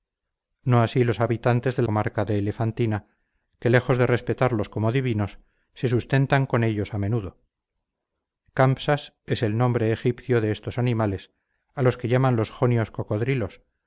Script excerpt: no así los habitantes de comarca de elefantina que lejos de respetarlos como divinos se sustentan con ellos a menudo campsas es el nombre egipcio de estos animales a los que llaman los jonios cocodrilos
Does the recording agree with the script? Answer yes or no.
yes